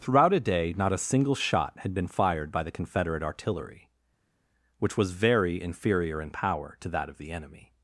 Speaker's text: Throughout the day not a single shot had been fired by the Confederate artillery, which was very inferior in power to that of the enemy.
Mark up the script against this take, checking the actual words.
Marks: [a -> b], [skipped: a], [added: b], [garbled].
Throughout [the -> a] day not a single shot had been fired by the Confederate artillery, which was very inferior in power to that of the enemy.